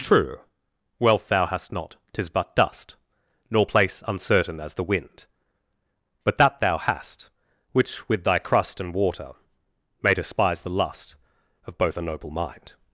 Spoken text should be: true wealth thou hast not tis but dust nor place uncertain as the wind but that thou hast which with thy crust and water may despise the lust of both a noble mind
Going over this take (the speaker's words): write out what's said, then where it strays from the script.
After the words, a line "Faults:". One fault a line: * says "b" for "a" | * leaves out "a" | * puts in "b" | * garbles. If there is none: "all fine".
true wealth thou hast not tis but dust nor place uncertain as the wind but that thou hast which with thy crust and water may despise the lust of both a noble mind
Faults:
all fine